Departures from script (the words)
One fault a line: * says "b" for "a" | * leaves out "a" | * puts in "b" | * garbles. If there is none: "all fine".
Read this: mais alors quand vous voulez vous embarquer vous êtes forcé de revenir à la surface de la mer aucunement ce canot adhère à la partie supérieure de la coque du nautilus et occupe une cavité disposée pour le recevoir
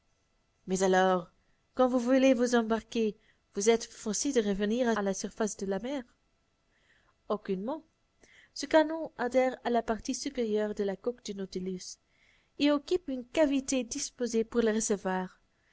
all fine